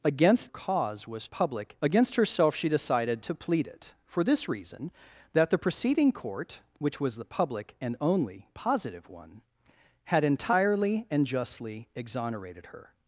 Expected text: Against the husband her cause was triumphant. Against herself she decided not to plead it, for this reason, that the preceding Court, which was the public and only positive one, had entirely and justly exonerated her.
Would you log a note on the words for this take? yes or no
yes